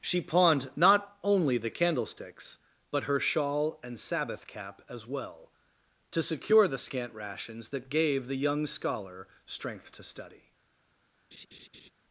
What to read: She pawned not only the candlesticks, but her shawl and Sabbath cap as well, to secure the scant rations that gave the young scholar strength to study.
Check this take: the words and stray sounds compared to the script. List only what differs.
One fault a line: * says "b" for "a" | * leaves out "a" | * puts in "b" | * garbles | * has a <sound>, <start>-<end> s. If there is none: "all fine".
* has a laugh, 11.3-11.9 s